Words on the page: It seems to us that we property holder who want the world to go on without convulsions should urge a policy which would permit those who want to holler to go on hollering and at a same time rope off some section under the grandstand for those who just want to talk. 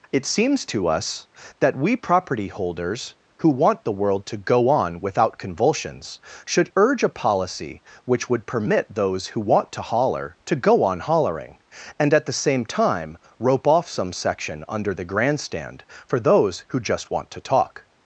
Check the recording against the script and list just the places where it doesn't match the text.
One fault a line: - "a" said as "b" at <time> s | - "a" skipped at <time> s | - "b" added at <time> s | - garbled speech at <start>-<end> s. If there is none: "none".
- "holder" said as "holders" at 2.5 s
- "a" said as "the" at 12.3 s